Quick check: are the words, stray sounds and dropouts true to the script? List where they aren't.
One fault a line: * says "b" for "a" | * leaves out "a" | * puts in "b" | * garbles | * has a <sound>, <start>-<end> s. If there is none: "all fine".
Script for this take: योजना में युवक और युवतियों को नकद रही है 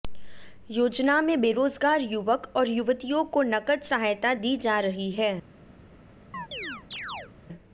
* puts in "बेरोजगार"
* puts in "सहायता दी जा"
* has a chirp, 6.3-7.3 s